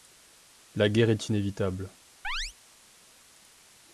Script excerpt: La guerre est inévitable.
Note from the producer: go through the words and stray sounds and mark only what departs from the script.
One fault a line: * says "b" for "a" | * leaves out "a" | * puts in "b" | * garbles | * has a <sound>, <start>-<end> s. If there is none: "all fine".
* has a chirp, 2.2-2.5 s